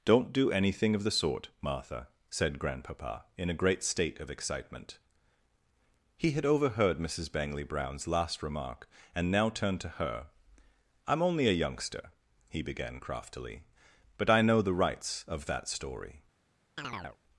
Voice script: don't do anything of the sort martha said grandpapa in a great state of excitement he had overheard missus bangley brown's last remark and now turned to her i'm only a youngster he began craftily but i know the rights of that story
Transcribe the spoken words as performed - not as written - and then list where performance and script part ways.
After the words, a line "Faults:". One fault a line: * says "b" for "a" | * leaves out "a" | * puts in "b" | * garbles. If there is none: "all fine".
don't do anything of the sort martha said grandpapa in a great state of excitement he had overheard missus bangley brown's last remark and now turned to her i'm only a youngster he began craftily but i know the rights of that story
Faults:
all fine